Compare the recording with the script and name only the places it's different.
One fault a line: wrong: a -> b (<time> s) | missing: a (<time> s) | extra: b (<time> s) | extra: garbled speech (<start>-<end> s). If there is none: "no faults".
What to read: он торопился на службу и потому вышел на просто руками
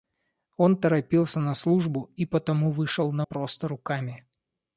no faults